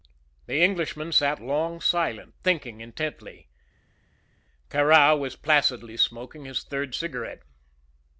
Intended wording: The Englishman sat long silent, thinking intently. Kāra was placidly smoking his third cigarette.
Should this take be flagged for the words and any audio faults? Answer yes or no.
no